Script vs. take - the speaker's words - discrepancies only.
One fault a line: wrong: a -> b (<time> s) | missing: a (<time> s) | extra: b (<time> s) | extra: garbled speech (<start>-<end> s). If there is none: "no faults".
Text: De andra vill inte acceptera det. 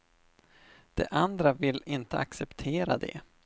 no faults